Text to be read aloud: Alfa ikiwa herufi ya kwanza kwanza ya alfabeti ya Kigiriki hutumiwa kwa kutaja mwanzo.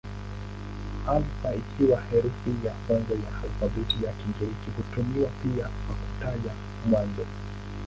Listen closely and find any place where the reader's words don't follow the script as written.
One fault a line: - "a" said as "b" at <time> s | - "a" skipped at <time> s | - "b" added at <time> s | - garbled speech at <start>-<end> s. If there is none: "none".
- "kwanza" skipped at 3.1 s
- "pia" added at 5.4 s